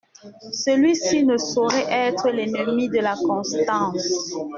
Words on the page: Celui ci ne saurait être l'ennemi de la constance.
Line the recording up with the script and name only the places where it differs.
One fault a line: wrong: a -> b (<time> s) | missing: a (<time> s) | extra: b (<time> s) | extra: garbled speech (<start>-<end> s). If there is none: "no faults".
no faults